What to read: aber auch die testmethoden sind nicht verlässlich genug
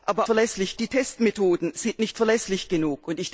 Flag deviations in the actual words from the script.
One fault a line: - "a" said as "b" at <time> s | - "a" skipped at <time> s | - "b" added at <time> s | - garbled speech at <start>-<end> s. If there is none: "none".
- "auch" said as "verlässlich" at 0.3 s